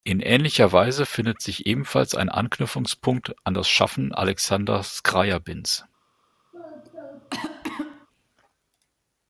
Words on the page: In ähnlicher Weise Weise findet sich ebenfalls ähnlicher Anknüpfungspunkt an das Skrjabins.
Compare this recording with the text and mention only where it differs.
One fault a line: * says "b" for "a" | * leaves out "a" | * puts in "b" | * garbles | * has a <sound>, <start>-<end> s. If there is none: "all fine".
* leaves out "Weise"
* says "ein" for "ähnlicher"
* puts in "Schaffen Alexander"
* has a cough, 6.5-8.1 s